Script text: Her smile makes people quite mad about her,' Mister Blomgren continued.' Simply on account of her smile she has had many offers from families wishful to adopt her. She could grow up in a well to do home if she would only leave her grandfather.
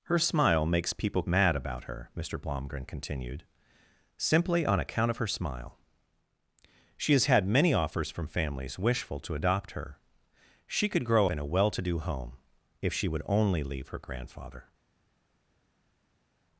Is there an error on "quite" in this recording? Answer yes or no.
yes